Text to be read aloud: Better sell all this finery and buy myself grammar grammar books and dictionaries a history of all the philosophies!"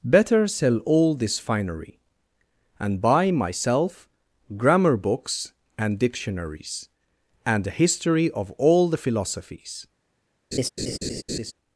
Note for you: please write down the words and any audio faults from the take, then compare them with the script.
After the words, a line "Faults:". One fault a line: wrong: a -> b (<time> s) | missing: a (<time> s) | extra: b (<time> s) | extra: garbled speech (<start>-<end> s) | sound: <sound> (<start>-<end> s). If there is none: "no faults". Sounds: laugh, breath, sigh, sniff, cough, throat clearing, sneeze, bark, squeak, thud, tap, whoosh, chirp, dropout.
Better sell all this finery and buy myself grammar books and dictionaries and a history of all the philosophies!"
Faults:
missing: grammar (5.0 s)
extra: and (7.5 s)
sound: laugh (10.5-11.5 s)